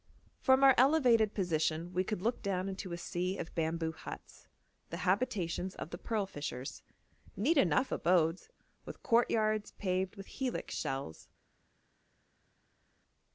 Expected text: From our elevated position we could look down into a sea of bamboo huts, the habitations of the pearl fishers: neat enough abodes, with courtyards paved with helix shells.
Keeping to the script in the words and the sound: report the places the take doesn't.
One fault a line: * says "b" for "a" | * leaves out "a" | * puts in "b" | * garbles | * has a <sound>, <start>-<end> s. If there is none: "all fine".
all fine